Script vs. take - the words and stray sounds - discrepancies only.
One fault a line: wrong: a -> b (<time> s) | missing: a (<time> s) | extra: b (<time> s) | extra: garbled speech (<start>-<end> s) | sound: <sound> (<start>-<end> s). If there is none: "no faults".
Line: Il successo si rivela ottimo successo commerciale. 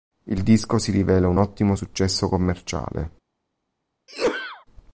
wrong: successo -> disco (0.4 s)
extra: un (1.3 s)
sound: sneeze (4.1-4.6 s)